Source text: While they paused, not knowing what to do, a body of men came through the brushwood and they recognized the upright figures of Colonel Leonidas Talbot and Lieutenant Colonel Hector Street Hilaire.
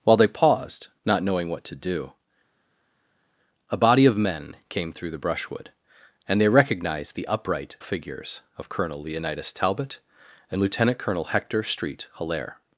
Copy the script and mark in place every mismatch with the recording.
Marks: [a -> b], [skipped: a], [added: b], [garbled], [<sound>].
While they paused, not knowing what to do, a body of men came through the brushwood and they recognized the upright figures of Colonel Leonidas Talbot and Lieutenant Colonel Hector Street Hilaire.